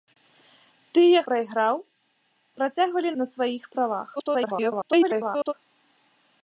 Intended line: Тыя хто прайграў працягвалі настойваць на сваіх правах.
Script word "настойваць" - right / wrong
wrong